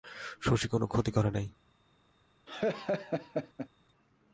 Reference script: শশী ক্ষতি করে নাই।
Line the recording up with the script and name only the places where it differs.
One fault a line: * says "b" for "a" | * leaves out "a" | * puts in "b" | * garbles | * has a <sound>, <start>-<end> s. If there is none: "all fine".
* puts in "কোনো"
* has a laugh, 2.5-3.7 s